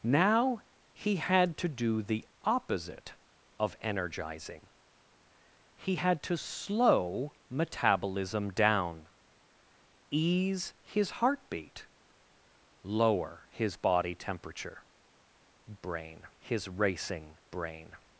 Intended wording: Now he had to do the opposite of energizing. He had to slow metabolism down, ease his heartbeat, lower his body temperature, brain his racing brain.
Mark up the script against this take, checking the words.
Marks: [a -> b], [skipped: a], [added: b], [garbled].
Now he had to do the opposite of energizing. He had to slow metabolism down, ease his heartbeat, lower his body temperature, brain his racing brain.